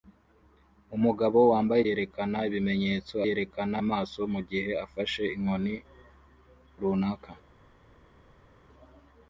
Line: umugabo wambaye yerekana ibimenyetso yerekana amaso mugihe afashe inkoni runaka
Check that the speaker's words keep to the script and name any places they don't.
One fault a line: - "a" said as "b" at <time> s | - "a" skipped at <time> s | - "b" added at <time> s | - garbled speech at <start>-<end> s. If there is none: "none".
none